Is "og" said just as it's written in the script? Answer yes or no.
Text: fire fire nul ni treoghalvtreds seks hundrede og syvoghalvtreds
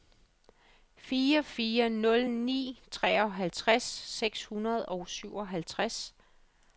yes